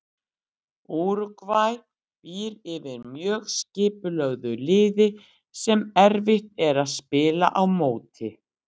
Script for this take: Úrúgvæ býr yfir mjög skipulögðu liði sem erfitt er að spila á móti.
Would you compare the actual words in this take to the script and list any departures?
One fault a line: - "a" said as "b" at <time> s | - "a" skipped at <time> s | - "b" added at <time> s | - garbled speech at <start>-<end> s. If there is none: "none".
none